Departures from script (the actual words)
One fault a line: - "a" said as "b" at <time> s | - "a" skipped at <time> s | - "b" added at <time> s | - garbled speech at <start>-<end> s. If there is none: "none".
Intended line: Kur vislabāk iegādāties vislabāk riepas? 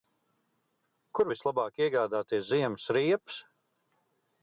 - "vislabāk" said as "ziemas" at 2.5 s